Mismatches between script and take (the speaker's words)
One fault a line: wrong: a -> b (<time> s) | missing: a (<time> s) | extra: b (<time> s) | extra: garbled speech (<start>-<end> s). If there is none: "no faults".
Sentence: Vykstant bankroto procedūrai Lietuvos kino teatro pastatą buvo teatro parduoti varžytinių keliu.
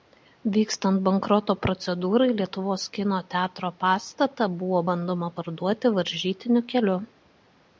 wrong: teatro -> bandoma (4.9 s)